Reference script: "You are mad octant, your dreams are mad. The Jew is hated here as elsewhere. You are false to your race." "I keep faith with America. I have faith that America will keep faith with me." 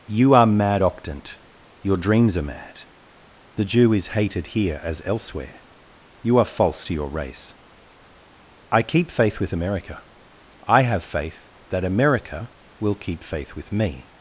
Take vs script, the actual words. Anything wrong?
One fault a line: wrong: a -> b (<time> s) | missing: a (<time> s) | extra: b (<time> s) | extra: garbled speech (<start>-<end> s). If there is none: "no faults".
no faults